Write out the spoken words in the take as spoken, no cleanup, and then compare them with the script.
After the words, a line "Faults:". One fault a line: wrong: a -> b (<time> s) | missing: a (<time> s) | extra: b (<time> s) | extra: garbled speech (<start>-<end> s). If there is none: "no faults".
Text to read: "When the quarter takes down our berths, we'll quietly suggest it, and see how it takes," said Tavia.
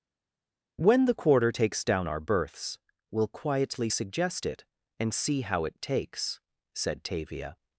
"When the quarter takes down our berths, we'll quietly suggest it, and see how it takes," said Tavia.
Faults:
no faults